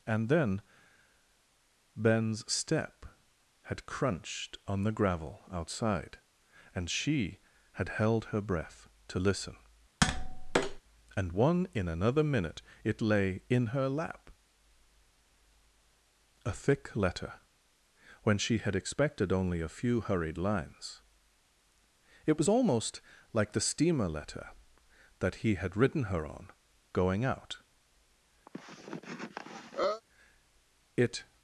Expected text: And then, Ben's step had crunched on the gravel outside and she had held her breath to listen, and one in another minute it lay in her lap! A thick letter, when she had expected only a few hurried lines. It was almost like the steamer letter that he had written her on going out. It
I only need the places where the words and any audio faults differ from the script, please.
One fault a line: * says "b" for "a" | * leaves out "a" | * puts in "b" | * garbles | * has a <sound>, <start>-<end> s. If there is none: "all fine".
* has a tap, 10.0-10.8 s
* has a cough, 28.5-30.0 s